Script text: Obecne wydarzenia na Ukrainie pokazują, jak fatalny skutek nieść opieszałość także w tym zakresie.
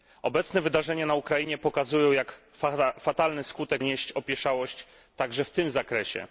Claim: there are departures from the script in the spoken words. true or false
false